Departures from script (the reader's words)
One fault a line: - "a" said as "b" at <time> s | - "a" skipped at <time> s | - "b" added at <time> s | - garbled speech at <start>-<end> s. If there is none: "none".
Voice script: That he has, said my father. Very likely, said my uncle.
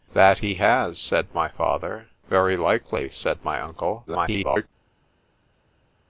- garbled speech at 4.1-4.7 s